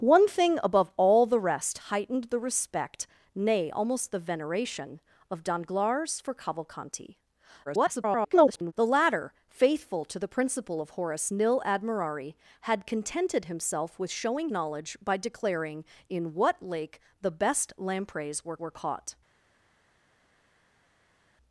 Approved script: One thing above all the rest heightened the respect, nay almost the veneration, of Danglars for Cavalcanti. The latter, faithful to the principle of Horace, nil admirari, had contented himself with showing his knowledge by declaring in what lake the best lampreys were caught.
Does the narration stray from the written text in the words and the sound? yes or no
yes